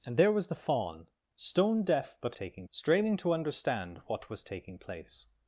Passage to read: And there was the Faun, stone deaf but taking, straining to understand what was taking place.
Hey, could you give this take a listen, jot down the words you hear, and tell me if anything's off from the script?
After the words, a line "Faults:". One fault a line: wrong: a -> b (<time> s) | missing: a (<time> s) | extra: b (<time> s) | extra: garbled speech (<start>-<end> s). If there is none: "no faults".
And there was the Faun, stone deaf but taking, straining to understand what was taking place.
Faults:
no faults